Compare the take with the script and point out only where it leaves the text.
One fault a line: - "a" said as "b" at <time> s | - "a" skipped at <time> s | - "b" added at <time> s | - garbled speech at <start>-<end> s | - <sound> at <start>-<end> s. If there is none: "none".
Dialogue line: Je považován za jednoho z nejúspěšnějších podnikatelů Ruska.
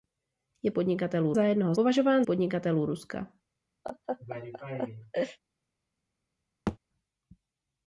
- "považován" said as "podnikatelů" at 0.7 s
- "nejúspěšnějších" said as "považován" at 1.7 s
- laugh at 3.8-5.4 s
- thud at 6.7-6.8 s